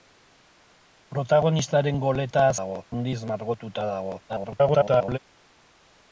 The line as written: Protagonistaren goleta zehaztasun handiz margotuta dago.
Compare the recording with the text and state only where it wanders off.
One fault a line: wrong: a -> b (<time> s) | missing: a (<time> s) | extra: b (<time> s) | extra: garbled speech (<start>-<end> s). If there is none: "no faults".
wrong: zehaztasun -> dago (2.6 s)
extra: garbled speech (4.3-5.2 s)